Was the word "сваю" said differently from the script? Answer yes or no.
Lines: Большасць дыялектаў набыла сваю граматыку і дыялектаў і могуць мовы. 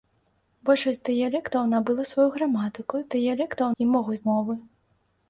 no